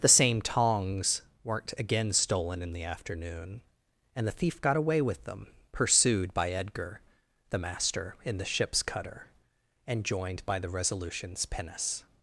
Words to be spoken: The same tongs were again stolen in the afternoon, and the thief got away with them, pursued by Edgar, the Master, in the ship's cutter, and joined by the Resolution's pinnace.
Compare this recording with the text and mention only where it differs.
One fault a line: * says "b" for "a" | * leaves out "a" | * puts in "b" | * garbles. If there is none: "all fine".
* says "weren't" for "were"